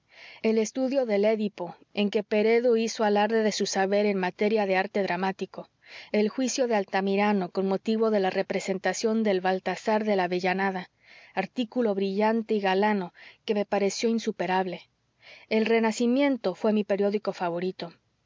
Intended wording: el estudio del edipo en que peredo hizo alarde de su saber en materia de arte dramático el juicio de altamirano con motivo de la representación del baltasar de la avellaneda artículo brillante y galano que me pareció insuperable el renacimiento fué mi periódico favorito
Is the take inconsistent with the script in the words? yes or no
no